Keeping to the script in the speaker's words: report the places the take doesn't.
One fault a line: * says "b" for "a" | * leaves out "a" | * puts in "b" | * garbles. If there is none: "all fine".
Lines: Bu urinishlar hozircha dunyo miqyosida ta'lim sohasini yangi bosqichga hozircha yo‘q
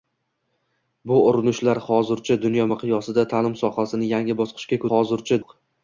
all fine